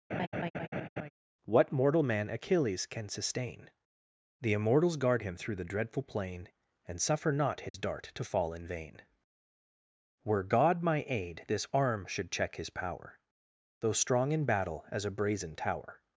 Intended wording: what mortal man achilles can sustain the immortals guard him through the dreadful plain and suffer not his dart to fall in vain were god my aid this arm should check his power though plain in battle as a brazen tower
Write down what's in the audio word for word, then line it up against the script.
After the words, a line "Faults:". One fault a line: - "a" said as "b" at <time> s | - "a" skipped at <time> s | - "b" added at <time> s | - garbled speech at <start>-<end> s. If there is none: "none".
what mortal man achilles can sustain the immortals guard him through the dreadful plain and suffer not his dart to fall in vain were god my aid this arm should check his power though strong in battle as a brazen tower
Faults:
- "plain" said as "strong" at 13.9 s